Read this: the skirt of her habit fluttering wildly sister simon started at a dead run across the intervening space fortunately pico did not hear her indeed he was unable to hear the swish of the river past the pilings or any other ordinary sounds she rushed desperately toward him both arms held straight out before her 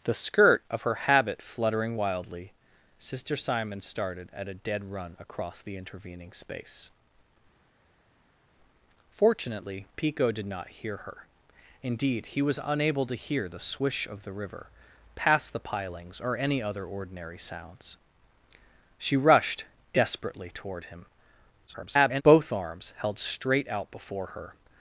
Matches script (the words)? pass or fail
fail